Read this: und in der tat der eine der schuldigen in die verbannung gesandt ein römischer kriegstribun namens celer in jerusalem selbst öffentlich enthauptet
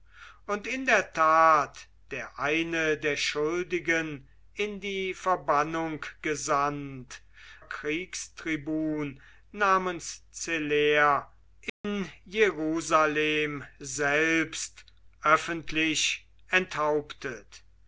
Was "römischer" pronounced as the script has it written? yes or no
no